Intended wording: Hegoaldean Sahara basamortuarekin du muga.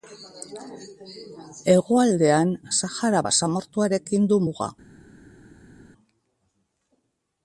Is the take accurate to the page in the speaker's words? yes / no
yes